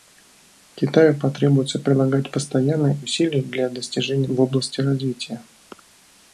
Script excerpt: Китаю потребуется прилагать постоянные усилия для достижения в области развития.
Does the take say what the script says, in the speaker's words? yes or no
yes